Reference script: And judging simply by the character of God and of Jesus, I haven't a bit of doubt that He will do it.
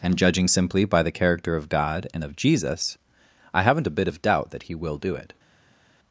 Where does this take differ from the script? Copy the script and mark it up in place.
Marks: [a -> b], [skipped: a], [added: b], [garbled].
And judging simply by the character of God and of Jesus, I haven't a bit of doubt that He will do it.